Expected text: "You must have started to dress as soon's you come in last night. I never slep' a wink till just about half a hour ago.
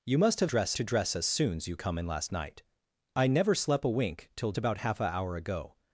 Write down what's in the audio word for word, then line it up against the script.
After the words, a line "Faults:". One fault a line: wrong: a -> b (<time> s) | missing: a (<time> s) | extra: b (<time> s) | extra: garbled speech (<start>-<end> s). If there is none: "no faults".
"You must have dress to dress as soon's you come in last night. I never slep' a wink till about half a hour ago.
Faults:
wrong: started -> dress (0.4 s)
missing: just (4.5 s)